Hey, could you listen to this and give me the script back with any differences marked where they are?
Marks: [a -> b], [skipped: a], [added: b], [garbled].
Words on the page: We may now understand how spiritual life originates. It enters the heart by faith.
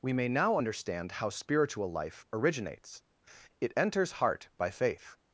We may now understand how spiritual life originates. It enters [skipped: the] heart by faith.